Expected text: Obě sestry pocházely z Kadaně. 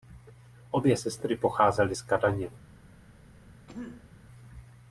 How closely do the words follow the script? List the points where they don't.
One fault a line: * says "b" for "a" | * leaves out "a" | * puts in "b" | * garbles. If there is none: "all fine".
all fine